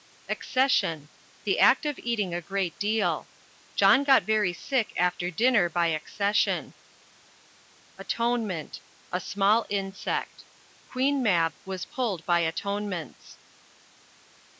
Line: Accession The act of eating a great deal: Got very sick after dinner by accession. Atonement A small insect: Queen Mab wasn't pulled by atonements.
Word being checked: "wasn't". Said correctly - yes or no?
no